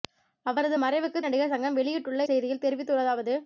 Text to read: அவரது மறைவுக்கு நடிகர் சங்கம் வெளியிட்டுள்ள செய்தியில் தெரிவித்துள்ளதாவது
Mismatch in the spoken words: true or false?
false